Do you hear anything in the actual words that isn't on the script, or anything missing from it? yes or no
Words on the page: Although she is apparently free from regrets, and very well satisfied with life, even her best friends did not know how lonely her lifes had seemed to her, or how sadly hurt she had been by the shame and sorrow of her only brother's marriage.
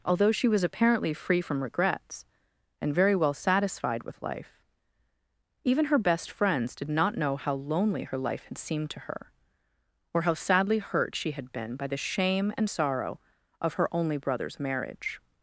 yes